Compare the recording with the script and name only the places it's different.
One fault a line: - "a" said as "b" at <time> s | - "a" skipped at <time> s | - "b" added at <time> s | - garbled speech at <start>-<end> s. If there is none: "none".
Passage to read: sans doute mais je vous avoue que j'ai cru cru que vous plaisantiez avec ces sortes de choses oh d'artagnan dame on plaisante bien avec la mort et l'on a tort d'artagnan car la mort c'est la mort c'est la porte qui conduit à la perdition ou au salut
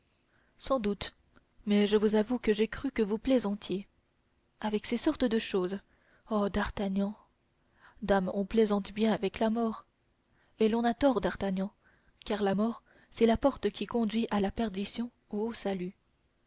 - "cru" skipped at 2.9 s
- "mort c'est la" skipped at 13.4 s